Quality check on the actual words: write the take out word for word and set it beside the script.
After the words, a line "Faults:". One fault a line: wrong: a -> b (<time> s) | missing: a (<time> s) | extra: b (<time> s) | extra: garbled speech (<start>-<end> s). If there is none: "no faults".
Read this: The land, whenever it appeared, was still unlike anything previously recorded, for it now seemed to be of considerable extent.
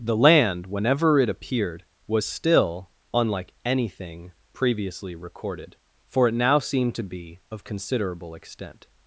The land, whenever it appeared, was still unlike anything previously recorded, for it now seemed to be of considerable extent.
Faults:
no faults